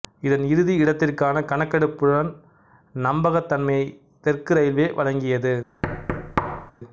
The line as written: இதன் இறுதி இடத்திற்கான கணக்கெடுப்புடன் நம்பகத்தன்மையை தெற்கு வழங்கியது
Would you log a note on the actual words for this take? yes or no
yes